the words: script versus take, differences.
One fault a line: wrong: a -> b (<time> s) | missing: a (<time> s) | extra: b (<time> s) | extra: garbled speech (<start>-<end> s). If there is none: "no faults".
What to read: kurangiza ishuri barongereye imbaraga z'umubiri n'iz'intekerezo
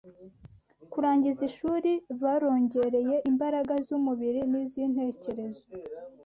no faults